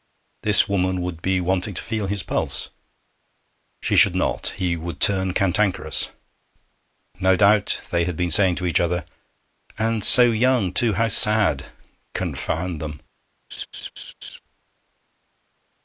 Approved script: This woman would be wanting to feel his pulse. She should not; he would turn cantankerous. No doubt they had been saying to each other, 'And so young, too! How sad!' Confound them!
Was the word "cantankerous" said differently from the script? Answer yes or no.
no